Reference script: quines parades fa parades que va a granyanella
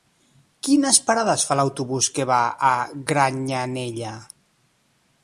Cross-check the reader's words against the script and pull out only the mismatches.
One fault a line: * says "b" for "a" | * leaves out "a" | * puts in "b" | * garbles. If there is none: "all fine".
* says "l'autobús" for "parades"